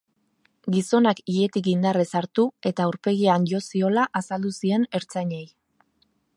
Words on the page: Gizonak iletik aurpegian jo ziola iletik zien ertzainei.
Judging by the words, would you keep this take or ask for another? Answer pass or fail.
fail